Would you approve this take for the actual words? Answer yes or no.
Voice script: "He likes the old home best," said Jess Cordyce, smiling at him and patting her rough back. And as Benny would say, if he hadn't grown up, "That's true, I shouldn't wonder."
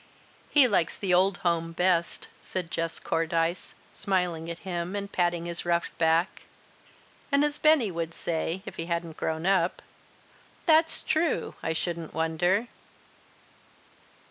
no